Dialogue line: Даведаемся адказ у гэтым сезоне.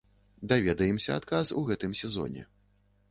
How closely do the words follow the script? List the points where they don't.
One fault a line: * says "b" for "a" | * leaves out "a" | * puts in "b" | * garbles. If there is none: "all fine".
all fine